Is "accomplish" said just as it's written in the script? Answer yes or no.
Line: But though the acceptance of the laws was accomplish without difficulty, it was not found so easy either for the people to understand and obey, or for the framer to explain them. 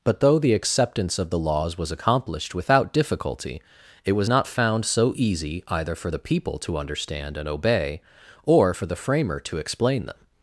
no